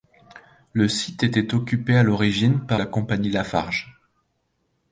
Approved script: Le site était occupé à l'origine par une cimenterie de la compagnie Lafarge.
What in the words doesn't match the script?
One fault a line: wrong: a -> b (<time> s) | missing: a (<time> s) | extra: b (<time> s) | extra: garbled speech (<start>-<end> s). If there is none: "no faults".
missing: une cimenterie de (2.8 s)